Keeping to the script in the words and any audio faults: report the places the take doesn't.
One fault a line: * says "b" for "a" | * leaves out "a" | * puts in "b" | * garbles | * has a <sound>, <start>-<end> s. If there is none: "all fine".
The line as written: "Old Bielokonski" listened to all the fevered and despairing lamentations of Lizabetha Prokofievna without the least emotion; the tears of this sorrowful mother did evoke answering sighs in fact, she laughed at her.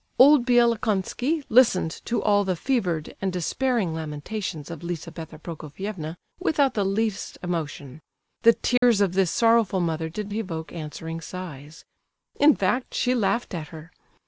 * has a dropout, 8.8-8.8 s